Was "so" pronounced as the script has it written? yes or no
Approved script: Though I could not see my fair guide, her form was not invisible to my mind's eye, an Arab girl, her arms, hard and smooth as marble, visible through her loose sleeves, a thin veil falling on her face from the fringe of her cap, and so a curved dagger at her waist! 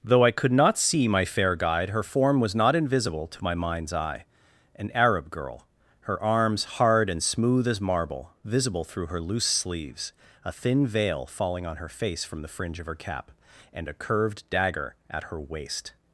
no